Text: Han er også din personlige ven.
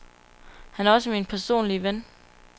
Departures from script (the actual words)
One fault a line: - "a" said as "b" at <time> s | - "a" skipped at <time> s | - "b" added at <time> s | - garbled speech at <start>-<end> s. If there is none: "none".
- "din" said as "min" at 1.1 s